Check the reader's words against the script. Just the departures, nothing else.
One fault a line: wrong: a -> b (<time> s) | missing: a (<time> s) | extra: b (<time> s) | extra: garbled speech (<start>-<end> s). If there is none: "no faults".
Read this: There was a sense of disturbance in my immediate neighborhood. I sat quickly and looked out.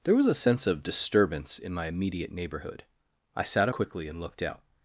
no faults